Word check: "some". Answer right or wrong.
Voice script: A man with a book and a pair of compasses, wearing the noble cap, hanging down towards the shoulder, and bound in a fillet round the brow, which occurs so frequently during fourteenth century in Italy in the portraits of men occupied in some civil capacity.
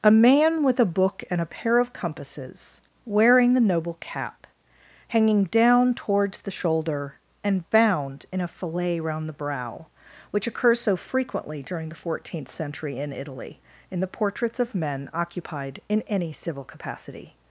wrong